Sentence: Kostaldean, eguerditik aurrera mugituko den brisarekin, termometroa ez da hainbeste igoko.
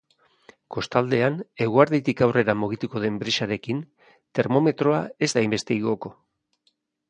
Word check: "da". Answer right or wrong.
right